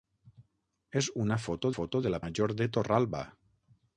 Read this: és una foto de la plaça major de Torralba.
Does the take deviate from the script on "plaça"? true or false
true